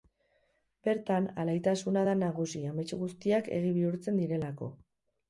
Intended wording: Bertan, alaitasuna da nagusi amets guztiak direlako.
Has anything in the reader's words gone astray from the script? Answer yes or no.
yes